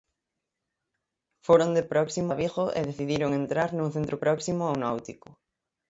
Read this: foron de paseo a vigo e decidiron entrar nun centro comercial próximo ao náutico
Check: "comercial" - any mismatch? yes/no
yes